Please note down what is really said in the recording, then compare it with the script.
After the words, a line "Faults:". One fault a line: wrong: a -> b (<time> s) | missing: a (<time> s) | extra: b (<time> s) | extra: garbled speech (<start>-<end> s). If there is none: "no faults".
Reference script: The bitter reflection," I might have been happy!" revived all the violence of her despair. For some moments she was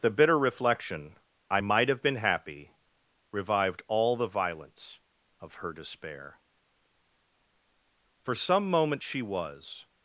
The bitter reflection," I might have been happy!" revived all the violence of her despair. For some moments she was
Faults:
no faults